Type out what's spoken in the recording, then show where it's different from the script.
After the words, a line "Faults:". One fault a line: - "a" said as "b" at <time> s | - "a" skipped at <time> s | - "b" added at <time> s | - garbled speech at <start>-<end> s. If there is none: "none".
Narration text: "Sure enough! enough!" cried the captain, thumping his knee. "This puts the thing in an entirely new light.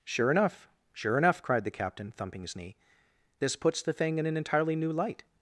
"Sure enough! sure enough!" cried the captain, thumping his knee. "This puts the thing in an entirely new light.
Faults:
- "sure" added at 0.9 s